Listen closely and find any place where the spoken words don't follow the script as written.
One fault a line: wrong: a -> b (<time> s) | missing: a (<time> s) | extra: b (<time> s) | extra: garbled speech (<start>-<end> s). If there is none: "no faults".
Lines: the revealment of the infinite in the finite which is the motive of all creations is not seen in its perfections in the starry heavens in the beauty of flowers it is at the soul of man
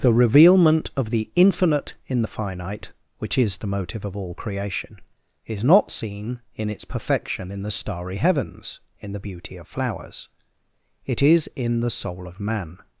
wrong: creations -> creation (4.3 s)
wrong: perfections -> perfection (6.8 s)
wrong: at -> in (11.6 s)